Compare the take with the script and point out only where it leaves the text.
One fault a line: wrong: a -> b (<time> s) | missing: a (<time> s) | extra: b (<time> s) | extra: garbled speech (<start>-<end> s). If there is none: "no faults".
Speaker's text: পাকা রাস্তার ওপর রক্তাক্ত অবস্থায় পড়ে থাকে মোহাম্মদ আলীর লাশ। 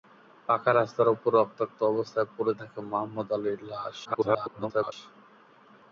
extra: garbled speech (4.0-4.9 s)